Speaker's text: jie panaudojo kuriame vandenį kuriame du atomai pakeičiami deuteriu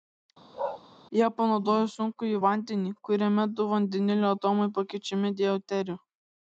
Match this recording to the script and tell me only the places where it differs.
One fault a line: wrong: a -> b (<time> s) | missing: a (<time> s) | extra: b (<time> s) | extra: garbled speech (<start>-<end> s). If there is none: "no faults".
wrong: kuriame -> sunkųjį (1.9 s)
extra: vandenilio (3.7 s)